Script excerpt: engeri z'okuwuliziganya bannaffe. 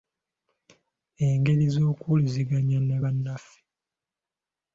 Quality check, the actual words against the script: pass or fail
fail